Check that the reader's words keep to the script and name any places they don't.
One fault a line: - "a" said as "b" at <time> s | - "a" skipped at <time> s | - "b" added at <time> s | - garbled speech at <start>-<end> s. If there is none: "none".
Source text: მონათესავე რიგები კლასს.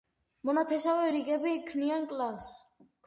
- "ქმნიან" added at 1.7 s